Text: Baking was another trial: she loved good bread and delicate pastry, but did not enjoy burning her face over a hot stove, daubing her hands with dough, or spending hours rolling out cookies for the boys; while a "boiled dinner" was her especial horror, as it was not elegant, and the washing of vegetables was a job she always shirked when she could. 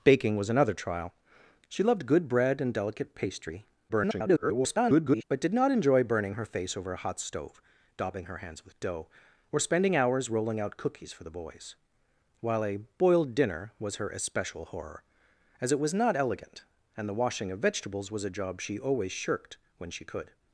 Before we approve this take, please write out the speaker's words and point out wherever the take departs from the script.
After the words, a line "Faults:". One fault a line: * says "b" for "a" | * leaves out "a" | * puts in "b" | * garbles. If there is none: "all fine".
Baking was another trial: she loved good bread and delicate pastry, [garbled] but did not enjoy burning her face over a hot stove, daubing her hands with dough, or spending hours rolling out cookies for the boys; while a "boiled dinner" was her especial horror, as it was not elegant, and the washing of vegetables was a job she always shirked when she could.
Faults:
* garbles